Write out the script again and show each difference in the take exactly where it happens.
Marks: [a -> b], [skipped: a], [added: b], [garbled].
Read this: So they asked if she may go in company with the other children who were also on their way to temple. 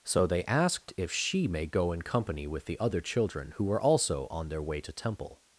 So they asked if she may go in company with the other children who were also on their way to temple.